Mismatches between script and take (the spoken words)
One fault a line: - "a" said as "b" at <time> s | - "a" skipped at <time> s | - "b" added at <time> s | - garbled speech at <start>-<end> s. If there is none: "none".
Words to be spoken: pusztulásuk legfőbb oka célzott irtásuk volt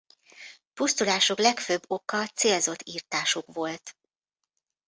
none